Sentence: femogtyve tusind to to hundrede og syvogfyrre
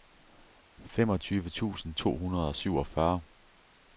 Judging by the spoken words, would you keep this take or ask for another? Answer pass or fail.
fail